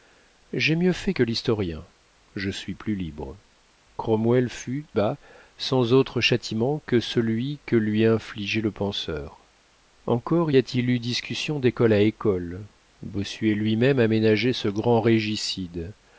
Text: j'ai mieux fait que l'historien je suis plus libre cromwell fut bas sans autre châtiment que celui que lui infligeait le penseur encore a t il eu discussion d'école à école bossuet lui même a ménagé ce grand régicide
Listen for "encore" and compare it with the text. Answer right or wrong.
right